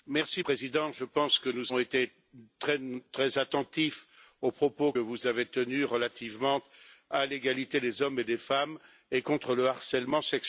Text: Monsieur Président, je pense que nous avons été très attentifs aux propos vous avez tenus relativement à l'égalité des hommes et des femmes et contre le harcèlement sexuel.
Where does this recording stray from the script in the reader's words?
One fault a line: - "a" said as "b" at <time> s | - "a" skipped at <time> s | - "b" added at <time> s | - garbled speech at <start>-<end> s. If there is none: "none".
none